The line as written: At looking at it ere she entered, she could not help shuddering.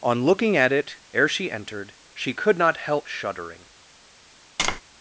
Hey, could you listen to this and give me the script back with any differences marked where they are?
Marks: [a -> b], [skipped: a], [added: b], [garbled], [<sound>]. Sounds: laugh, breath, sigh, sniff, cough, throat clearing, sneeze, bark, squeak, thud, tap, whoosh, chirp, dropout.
[At -> On] looking at it ere she entered, she could not help shuddering. [tap]